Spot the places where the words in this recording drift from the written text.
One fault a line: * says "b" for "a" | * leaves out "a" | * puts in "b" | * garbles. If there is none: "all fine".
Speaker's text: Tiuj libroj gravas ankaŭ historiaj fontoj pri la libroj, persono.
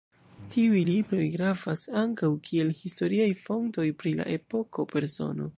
* puts in "kiel"
* says "epoko" for "libroj"